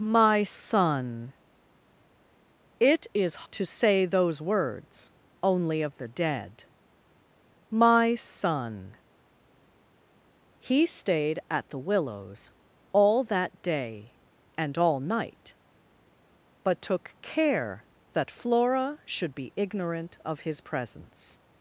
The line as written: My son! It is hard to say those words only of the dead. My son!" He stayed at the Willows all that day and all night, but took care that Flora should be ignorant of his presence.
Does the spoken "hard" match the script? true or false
false